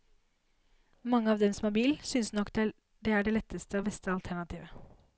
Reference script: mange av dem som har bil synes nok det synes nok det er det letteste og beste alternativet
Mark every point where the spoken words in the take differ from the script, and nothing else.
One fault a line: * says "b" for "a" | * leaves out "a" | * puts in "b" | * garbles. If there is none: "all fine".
* leaves out "synes nok det"